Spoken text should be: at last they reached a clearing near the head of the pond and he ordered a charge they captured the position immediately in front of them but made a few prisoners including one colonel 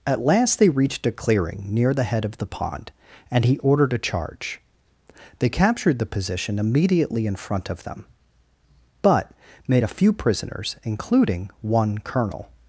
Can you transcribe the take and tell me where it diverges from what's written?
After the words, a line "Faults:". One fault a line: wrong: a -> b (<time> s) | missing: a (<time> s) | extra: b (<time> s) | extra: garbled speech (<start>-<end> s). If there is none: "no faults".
at last they reached a clearing near the head of the pond and he ordered a charge they captured the position immediately in front of them but made a few prisoners including one colonel
Faults:
no faults